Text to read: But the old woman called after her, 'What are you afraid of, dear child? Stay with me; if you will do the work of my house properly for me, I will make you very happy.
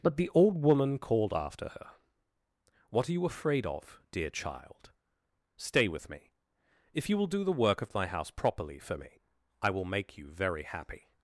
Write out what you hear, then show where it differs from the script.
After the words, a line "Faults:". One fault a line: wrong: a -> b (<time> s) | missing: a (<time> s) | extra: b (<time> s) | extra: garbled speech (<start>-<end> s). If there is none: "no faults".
But the old woman called after her, 'What are you afraid of, dear child? Stay with me; if you will do the work of my house properly for me, I will make you very happy.
Faults:
no faults